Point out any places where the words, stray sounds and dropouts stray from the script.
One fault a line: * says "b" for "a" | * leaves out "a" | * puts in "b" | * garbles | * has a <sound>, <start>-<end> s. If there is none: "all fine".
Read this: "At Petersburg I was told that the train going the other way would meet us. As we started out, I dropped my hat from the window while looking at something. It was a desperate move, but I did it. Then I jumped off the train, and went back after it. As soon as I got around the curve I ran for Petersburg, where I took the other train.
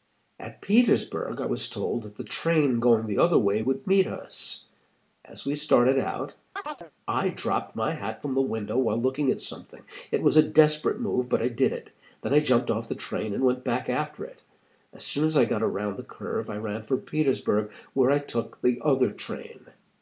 * has a chirp, 6.6-6.9 s